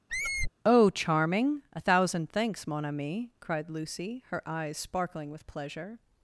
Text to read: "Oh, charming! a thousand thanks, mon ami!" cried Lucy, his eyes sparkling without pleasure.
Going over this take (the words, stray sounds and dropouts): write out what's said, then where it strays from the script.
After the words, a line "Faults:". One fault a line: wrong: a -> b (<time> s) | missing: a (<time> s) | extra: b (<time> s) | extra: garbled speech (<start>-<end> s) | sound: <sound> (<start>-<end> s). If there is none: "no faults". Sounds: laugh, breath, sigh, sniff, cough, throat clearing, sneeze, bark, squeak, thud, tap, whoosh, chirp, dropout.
"Oh, charming! a thousand thanks, mon ami!" cried Lucy, her eyes sparkling with pleasure.
Faults:
sound: squeak (0.1-0.5 s)
wrong: his -> her (4.3 s)
wrong: without -> with (5.3 s)